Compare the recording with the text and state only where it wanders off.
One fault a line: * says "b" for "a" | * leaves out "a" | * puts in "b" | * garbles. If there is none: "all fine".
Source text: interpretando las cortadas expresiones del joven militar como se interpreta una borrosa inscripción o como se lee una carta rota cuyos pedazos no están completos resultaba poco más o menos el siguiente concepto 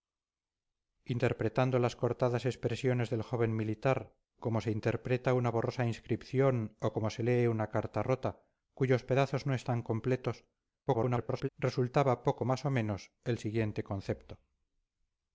* garbles